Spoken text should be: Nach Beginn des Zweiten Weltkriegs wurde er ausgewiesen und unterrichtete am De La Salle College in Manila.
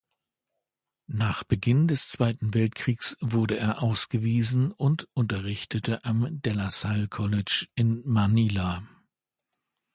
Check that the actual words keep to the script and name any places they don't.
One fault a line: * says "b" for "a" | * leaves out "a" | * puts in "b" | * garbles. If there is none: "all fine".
all fine